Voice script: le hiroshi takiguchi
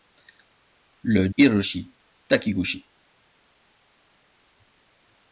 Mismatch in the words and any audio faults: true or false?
false